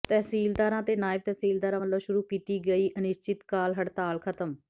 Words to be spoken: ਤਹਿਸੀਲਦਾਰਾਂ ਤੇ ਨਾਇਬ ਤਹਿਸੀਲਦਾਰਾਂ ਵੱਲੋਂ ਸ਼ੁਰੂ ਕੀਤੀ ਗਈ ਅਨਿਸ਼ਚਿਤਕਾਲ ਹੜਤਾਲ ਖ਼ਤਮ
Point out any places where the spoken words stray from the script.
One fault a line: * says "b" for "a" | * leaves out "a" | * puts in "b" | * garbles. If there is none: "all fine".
all fine